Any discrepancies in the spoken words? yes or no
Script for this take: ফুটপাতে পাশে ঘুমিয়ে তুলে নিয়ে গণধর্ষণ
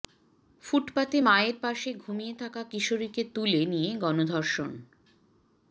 yes